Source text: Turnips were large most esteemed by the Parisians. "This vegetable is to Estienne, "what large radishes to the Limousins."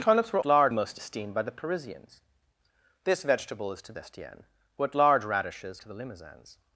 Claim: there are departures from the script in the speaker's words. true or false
false